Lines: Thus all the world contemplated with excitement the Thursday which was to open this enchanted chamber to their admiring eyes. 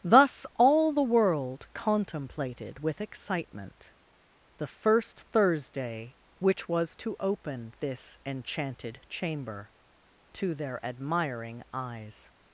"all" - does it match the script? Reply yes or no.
yes